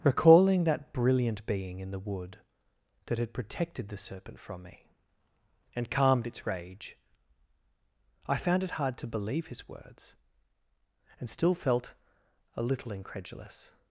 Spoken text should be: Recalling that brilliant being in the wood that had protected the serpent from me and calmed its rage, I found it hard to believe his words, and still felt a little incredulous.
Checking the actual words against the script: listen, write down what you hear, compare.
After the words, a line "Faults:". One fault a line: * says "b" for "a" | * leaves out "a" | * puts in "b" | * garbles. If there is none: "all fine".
Recalling that brilliant being in the wood that had protected the serpent from me and calmed its rage, I found it hard to believe his words, and still felt a little incredulous.
Faults:
all fine